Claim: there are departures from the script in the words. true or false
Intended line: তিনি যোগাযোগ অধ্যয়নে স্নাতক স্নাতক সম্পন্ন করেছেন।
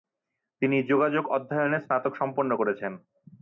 true